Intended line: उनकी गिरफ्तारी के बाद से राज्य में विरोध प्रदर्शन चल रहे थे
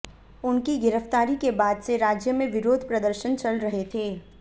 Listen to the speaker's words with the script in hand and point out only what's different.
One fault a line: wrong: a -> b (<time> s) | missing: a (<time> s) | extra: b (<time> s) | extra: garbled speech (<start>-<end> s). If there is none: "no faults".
no faults